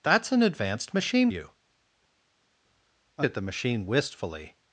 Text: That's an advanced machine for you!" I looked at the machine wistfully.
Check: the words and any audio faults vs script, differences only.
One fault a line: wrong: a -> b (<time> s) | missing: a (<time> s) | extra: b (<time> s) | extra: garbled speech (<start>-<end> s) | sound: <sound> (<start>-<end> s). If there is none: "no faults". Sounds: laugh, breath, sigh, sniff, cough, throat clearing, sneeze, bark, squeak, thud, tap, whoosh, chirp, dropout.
missing: for (1.3 s)
missing: looked (3.3 s)